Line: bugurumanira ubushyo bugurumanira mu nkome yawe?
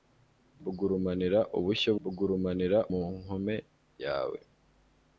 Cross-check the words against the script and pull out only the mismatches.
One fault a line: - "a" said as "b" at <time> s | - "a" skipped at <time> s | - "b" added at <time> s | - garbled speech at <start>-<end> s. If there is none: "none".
none